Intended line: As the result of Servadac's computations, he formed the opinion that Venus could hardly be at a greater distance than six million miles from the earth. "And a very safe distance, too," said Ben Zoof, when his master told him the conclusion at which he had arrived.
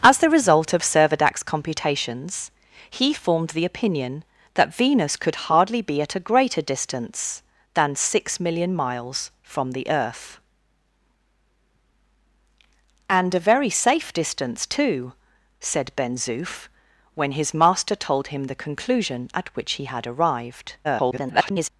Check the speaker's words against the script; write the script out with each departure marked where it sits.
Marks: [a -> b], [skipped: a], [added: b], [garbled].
As the result of Servadac's computations, he formed the opinion that Venus could hardly be at a greater distance than six million miles from the earth. "And a very safe distance, too," said Ben Zoof, when his master told him the conclusion at which he had arrived. [garbled]